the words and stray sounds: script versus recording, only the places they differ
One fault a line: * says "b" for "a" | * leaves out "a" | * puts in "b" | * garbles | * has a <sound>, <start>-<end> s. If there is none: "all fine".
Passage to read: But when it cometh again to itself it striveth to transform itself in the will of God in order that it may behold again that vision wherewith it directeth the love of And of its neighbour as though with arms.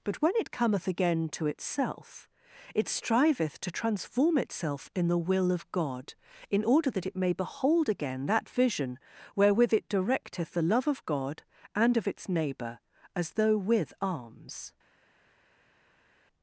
* puts in "God"